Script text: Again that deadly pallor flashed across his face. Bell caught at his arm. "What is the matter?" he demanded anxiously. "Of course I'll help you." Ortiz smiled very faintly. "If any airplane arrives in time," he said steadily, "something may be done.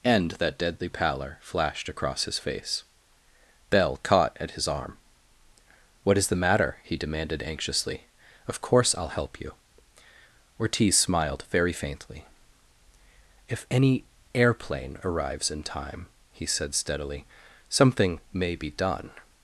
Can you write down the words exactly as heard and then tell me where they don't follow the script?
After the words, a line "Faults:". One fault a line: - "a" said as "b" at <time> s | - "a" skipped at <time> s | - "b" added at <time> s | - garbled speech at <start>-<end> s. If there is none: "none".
And that deadly pallor flashed across his face. Bell caught at his arm. "What is the matter?" he demanded anxiously. "Of course I'll help you." Ortiz smiled very faintly. "If any airplane arrives in time," he said steadily, "something may be done.
Faults:
- "Again" said as "And" at 0.0 s